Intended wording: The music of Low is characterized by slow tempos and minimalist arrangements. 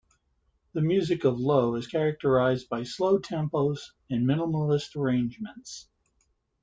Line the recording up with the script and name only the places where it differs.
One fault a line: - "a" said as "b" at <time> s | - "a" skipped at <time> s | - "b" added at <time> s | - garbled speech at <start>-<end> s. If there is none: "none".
none